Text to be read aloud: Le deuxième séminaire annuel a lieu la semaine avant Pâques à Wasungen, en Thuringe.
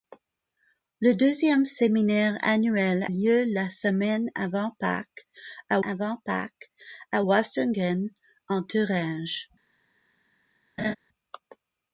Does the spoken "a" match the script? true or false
false